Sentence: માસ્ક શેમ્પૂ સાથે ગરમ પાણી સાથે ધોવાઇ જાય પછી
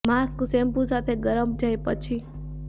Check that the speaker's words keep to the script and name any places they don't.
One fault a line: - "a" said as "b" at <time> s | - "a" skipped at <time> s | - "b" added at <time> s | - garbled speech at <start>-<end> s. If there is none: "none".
- "પાણી સાથે ધોવાઇ" skipped at 1.5 s